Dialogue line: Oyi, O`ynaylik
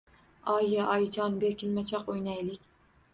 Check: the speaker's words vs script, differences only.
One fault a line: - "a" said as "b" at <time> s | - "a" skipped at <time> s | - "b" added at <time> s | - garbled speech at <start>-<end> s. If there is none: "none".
- "Oyijon berkinmachoq" added at 0.9 s